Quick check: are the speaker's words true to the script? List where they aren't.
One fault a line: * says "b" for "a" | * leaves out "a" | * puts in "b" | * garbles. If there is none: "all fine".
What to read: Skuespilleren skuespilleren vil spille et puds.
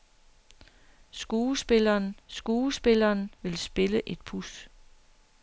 all fine